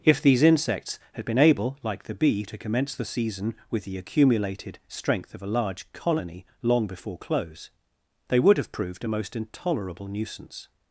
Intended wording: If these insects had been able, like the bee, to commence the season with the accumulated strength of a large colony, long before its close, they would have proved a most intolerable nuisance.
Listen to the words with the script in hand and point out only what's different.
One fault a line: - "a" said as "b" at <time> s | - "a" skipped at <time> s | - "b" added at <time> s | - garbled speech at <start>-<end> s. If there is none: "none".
- "its" skipped at 7.2 s